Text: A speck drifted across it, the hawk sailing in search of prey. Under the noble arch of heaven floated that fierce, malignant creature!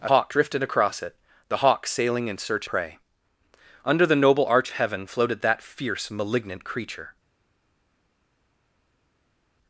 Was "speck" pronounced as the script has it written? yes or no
no